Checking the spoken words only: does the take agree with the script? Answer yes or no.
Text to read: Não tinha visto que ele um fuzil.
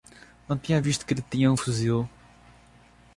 no